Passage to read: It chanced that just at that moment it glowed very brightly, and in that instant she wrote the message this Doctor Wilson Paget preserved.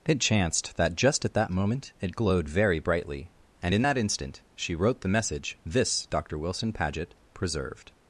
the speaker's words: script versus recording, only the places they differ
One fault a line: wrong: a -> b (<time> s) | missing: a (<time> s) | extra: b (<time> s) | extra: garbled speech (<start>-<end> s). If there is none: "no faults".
no faults